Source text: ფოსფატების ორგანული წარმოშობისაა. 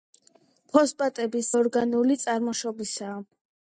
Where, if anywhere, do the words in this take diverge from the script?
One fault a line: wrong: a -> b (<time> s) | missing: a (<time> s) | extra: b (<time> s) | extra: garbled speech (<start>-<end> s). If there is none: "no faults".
no faults